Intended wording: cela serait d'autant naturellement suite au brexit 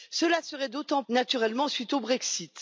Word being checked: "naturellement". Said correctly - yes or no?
yes